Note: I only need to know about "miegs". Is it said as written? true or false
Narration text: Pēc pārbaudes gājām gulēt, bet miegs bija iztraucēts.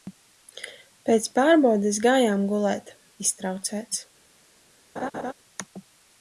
false